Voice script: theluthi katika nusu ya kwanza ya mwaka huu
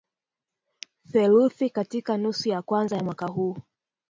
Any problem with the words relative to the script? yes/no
no